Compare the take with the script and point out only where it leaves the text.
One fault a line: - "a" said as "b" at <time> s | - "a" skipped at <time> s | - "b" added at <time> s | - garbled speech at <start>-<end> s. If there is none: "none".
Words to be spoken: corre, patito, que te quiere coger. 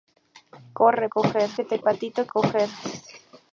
- "patito" said as "coger" at 1.1 s
- "quiere" said as "patito" at 1.8 s